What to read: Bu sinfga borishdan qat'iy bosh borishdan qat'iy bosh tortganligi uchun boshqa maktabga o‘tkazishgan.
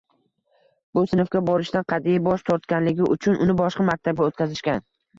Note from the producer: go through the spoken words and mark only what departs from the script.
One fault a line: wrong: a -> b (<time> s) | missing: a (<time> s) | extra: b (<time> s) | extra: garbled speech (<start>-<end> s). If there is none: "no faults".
missing: borishdan qat'iy bosh (2.5 s)
extra: uni (3.5 s)